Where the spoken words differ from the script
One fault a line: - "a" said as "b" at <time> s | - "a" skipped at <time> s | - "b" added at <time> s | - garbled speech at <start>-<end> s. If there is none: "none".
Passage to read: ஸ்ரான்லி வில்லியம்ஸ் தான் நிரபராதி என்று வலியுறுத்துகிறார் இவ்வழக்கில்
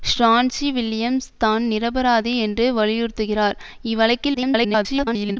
- garbled speech at 4.3-5.4 s